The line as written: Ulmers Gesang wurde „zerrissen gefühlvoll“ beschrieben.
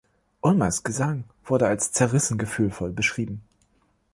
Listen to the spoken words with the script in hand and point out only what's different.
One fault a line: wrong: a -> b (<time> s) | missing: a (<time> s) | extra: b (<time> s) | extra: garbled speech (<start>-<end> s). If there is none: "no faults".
extra: als (1.7 s)